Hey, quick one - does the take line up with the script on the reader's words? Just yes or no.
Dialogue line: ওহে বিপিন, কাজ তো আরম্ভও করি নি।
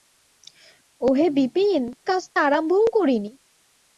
yes